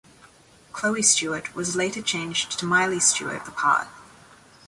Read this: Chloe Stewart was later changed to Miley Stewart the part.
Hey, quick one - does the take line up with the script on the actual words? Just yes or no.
yes